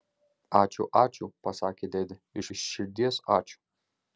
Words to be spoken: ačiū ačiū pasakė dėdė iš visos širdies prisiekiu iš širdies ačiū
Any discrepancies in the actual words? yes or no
yes